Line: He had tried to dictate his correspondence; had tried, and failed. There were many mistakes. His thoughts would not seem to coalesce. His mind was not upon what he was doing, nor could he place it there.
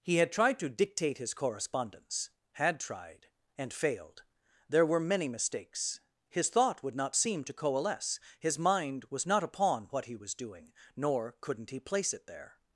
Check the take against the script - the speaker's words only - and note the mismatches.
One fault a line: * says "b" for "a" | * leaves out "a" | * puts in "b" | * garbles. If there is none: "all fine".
* says "thought" for "thoughts"
* says "couldn't" for "could"